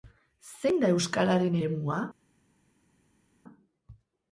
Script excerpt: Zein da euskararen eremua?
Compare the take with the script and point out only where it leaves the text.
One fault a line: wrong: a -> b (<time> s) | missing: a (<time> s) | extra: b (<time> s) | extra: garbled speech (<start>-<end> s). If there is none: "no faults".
no faults